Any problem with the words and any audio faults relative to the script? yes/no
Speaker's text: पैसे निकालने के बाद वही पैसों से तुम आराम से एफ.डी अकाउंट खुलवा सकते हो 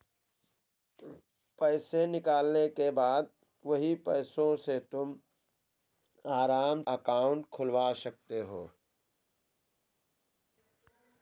yes